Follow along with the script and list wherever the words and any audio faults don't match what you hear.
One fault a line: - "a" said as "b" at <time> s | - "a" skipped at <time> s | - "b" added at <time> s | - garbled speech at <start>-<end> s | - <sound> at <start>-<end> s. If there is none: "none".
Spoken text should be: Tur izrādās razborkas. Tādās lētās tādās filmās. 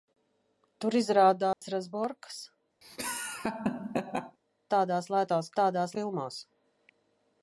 - dropout at 1.5-1.6 s
- laugh at 2.8-4.4 s